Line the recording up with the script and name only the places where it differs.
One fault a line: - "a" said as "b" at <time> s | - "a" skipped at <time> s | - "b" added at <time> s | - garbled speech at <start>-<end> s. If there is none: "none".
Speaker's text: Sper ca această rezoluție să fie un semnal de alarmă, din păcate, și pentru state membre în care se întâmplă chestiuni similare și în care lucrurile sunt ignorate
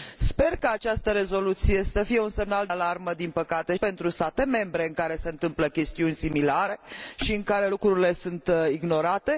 - "de" skipped at 2.7 s
- "și" skipped at 3.7 s